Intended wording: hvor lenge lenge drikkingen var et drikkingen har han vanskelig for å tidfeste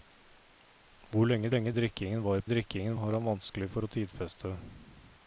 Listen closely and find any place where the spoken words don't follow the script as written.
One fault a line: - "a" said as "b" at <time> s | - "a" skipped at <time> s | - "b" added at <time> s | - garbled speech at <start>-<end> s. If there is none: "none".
none